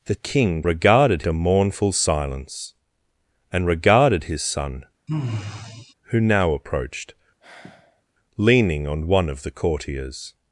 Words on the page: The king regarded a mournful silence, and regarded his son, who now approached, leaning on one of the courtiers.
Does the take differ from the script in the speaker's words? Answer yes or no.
no